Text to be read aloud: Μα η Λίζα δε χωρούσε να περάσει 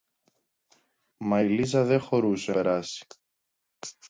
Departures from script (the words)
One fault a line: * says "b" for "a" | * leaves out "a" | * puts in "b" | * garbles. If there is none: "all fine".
* leaves out "να"